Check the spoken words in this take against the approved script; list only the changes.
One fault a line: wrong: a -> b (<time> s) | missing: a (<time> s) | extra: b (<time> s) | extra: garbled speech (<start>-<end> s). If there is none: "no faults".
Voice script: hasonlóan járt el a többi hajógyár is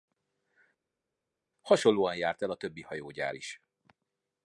no faults